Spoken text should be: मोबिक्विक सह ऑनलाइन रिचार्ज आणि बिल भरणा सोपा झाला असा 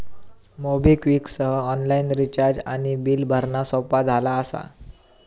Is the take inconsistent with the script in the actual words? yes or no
no